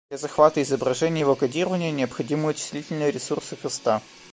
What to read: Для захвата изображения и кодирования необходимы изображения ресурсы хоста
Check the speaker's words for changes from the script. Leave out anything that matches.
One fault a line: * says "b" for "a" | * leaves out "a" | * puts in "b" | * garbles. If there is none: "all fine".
* puts in "его"
* says "вычислительные" for "изображения"